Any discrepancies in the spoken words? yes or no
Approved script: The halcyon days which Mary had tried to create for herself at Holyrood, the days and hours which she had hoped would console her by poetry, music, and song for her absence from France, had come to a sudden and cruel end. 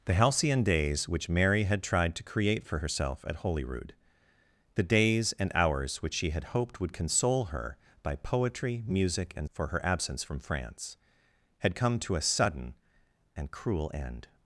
yes